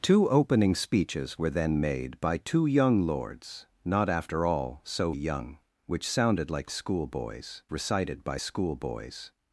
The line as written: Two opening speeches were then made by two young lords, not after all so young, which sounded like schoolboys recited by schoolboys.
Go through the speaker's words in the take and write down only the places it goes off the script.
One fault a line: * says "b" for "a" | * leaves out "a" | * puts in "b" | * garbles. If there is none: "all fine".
all fine